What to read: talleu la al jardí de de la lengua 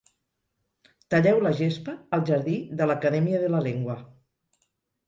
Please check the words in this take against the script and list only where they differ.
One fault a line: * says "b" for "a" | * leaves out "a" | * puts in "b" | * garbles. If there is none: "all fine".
* puts in "gespa"
* puts in "l'academia"